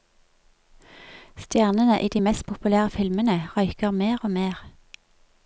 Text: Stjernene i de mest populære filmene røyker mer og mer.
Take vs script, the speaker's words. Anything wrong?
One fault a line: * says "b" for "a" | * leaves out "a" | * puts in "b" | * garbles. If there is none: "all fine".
all fine